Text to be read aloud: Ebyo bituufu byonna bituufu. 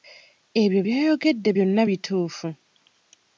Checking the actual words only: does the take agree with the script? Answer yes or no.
no